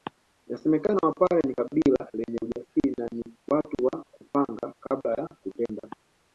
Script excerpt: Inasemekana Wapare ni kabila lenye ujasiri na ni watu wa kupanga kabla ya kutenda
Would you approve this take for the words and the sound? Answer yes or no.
yes